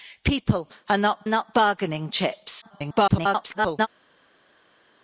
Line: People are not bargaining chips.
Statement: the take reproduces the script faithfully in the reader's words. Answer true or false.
false